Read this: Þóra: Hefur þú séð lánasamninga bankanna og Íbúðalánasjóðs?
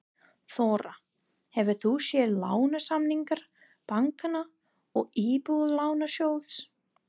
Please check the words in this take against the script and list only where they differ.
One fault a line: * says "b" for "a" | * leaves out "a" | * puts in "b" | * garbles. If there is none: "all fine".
all fine